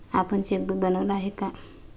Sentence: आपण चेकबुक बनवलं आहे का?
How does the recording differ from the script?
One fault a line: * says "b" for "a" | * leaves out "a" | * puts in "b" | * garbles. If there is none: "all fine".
all fine